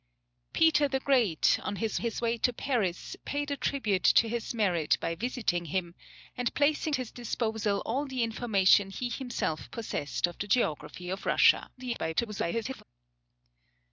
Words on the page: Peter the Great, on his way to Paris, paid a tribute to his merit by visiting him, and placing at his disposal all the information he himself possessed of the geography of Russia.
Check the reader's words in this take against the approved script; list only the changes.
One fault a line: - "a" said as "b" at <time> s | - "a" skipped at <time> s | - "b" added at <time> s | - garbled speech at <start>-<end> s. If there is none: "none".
- "his" added at 2.0 s
- "at" skipped at 7.0 s
- garbled speech at 11.8-12.8 s